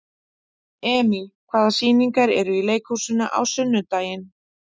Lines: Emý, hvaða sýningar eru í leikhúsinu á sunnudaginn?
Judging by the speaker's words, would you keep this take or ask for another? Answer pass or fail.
pass